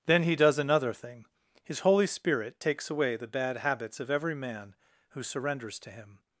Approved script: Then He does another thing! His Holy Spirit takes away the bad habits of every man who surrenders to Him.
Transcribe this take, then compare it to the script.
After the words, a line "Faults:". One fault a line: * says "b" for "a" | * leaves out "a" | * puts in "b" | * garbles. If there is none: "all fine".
Then He does another thing! His Holy Spirit takes away the bad habits of every man who surrenders to Him.
Faults:
all fine